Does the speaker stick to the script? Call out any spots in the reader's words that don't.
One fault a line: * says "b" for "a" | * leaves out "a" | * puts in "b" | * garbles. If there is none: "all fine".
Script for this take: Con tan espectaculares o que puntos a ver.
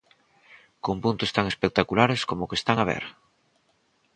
* puts in "puntos"
* puts in "como"
* says "están" for "puntos"